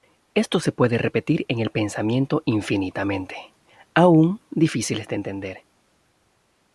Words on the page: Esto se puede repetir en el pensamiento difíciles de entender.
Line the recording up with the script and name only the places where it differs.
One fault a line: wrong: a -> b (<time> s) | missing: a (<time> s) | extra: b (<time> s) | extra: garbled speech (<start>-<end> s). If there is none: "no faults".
extra: infinitamente aún (2.5 s)